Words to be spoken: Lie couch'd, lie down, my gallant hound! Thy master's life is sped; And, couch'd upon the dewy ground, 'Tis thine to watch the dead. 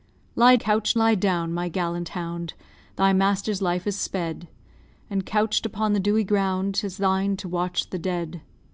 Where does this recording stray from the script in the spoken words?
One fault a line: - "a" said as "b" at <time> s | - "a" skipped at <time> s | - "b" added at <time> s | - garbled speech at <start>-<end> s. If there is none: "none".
none